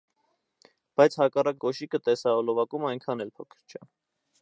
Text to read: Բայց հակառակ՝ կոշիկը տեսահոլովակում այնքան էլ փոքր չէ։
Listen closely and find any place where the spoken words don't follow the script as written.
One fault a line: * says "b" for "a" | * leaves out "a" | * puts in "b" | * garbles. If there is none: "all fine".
all fine